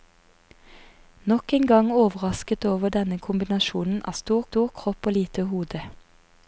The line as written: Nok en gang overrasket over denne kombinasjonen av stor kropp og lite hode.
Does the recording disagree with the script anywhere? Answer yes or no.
yes